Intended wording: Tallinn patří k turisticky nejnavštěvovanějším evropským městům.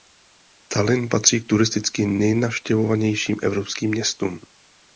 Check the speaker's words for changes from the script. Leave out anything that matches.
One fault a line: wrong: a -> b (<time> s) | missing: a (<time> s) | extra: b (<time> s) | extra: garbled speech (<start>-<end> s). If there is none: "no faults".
no faults